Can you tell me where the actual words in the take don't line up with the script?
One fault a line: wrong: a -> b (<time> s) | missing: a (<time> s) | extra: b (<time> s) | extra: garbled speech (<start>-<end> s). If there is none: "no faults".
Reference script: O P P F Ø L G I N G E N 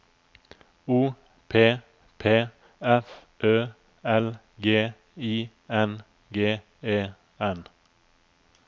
no faults